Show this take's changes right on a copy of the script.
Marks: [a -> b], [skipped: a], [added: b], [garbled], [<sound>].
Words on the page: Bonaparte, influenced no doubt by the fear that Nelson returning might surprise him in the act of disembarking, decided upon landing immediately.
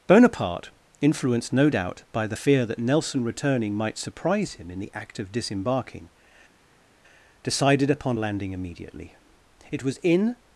Bonaparte, influenced no doubt by the fear that Nelson returning might surprise him in the act of disembarking, decided upon landing immediately. [added: It was in]